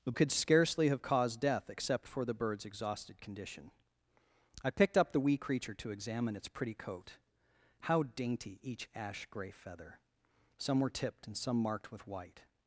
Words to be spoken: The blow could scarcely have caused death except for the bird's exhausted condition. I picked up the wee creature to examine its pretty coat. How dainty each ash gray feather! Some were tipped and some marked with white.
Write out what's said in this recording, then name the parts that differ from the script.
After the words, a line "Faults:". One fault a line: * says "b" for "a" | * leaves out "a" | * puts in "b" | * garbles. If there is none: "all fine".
The could scarcely have caused death except for the bird's exhausted condition. I picked up the wee creature to examine its pretty coat. How dainty each ash gray feather! Some were tipped and some marked with white.
Faults:
* leaves out "blow"